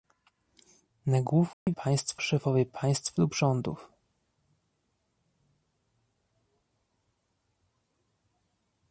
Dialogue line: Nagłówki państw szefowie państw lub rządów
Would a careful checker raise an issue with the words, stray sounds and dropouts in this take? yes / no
yes